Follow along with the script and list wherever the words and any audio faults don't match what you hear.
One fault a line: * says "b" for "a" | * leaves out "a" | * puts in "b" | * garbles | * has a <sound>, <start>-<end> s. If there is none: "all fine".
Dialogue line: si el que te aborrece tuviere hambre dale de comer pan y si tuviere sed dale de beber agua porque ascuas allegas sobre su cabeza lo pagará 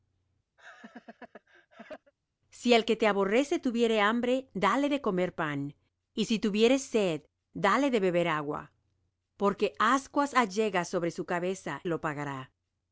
* has a laugh, 0.6-2.1 s